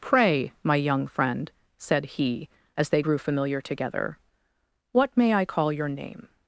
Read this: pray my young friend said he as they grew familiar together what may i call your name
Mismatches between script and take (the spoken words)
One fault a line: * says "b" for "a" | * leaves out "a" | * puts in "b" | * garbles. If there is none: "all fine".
all fine